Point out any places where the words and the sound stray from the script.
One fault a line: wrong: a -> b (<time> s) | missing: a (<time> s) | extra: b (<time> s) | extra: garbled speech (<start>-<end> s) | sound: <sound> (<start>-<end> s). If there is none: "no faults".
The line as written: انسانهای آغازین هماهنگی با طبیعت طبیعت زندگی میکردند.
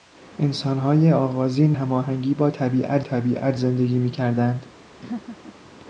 sound: laugh (5.0-5.6 s)